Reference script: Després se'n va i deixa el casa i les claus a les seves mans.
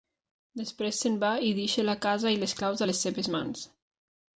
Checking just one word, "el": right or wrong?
wrong